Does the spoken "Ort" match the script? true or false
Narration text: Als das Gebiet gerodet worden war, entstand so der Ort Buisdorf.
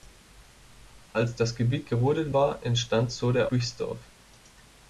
false